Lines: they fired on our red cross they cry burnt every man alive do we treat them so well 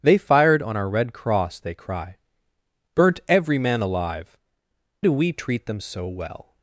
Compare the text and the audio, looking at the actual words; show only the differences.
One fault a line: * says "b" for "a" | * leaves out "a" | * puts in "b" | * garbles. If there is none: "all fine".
all fine